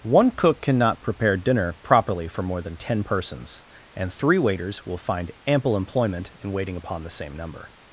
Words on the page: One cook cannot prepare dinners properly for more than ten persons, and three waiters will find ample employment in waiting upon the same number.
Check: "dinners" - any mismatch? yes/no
yes